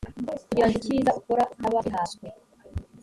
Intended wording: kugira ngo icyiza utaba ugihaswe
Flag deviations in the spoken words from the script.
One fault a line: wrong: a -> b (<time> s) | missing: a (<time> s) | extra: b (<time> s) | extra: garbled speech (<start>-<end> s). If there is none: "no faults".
extra: ukora (1.2 s)